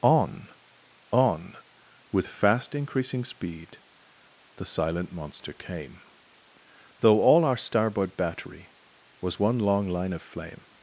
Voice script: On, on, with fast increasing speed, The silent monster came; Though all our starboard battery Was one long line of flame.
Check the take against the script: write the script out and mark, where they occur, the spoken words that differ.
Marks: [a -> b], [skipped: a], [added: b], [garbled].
On, on, with fast increasing speed, The silent monster came; Though all our starboard battery Was one long line of flame.